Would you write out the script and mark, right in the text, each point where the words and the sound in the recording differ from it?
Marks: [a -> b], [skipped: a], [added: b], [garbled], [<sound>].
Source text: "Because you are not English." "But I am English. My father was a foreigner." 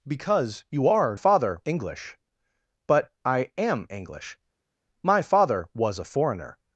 "Because you are [not -> father] English." "But I am English. My father was a foreigner."